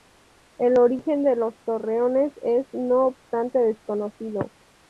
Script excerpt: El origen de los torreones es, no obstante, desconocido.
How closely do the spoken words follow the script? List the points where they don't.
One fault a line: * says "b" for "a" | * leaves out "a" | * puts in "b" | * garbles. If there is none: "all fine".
all fine